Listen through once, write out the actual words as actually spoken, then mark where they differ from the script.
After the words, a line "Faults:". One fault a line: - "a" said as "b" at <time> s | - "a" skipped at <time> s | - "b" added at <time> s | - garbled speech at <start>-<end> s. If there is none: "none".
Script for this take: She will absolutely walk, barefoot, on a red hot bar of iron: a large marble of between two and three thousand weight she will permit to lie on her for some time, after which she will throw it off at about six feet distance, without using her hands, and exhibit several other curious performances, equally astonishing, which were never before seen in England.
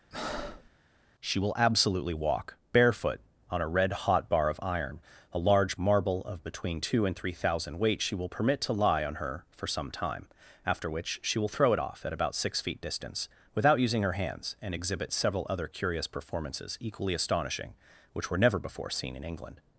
She will absolutely walk, barefoot, on a red hot bar of iron: a large marble of between two and three thousand weight she will permit to lie on her for some time, after which she will throw it off at about six feet distance, without using her hands, and exhibit several other curious performances, equally astonishing, which were never before seen in England.
Faults:
none